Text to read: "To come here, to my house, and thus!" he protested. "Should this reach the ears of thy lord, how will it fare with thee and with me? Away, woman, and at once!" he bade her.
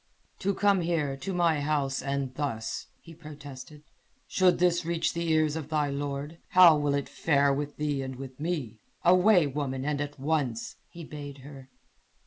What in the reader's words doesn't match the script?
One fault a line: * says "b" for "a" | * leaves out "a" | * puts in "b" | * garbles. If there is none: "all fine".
all fine